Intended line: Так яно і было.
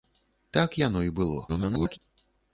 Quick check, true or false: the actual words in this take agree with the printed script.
false